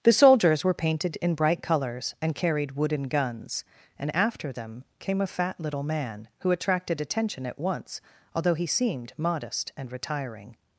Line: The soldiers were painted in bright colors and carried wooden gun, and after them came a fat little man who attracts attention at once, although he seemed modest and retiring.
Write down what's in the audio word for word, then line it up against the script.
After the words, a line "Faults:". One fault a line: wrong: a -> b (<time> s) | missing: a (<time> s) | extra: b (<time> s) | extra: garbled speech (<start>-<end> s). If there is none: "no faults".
The soldiers were painted in bright colors and carried wooden guns, and after them came a fat little man who attracted attention at once, although he seemed modest and retiring.
Faults:
wrong: gun -> guns (3.0 s)
wrong: attracts -> attracted (6.5 s)